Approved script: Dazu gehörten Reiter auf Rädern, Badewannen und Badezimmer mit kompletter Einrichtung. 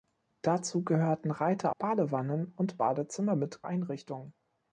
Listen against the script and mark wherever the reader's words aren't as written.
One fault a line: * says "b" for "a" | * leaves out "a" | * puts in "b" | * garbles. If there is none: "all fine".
* leaves out "auf Rädern"
* leaves out "kompletter"